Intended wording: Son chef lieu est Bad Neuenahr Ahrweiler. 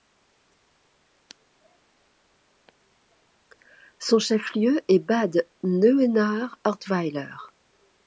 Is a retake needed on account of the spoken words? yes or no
no